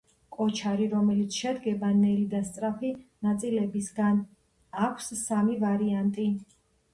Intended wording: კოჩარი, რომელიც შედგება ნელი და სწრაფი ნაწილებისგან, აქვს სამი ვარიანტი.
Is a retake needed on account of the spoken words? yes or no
no